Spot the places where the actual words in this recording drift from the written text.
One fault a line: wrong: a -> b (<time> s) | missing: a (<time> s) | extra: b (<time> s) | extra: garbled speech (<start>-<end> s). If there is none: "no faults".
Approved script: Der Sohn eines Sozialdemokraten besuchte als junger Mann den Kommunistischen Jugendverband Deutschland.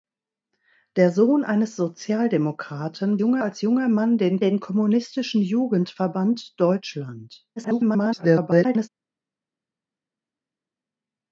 wrong: besuchte -> junger (3.2 s)
extra: den (4.4 s)
extra: garbled speech (7.6-8.9 s)